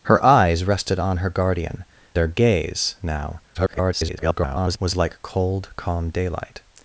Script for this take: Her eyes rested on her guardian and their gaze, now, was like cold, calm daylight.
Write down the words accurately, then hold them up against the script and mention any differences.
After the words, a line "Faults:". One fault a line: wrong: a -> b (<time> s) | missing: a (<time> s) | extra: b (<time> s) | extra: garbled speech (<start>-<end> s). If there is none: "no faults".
Her eyes rested on her guardian their gaze, now, [garbled] was like cold, calm daylight.
Faults:
missing: and (1.9 s)
extra: garbled speech (3.5-4.8 s)